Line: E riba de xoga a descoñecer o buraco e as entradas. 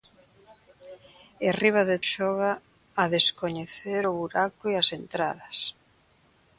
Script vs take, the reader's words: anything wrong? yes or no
no